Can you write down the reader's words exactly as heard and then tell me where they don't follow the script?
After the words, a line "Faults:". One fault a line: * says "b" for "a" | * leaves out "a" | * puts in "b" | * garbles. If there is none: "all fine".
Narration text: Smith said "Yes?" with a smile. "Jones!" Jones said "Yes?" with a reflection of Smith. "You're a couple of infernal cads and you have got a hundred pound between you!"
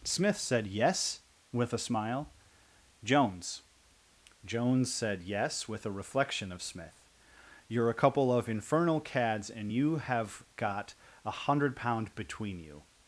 Smith said "Yes?" with a smile. "Jones!" Jones said "Yes?" with a reflection of Smith. "You're a couple of infernal cads and you have got a hundred pound between you!"
Faults:
all fine